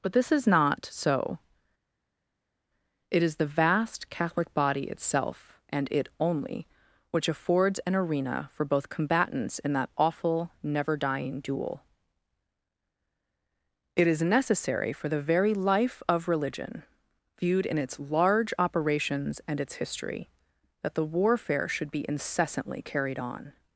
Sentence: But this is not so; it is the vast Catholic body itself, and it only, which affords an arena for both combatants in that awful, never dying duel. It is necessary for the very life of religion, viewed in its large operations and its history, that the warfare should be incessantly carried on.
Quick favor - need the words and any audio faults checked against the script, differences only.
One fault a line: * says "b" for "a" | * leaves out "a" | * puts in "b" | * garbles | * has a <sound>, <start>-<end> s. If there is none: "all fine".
all fine